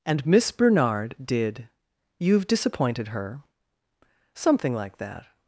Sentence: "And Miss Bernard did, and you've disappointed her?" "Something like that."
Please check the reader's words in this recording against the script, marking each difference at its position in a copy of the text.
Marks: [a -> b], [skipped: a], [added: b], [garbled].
"And Miss Bernard did, [skipped: and] you've disappointed her?" "Something like that."